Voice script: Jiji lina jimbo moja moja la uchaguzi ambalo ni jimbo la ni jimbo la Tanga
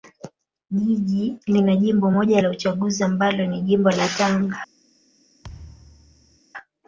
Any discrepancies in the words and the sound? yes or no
yes